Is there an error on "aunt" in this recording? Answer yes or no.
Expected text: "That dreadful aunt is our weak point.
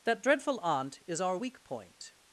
no